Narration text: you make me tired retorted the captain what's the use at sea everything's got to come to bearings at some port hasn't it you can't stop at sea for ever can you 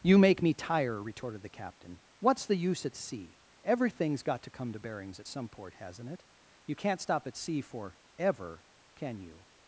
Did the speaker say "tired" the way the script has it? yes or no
no